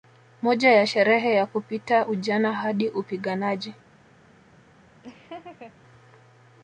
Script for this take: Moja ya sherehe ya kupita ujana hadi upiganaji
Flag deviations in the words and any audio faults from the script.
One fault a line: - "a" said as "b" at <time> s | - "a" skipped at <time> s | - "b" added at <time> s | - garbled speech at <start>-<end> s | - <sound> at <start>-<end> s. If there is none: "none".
- laugh at 5.0-5.8 s